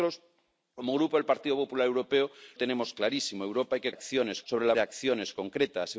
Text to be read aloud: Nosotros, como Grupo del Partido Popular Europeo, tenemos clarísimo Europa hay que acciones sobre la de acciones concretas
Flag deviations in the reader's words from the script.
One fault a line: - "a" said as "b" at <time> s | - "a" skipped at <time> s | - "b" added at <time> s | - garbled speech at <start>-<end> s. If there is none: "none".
none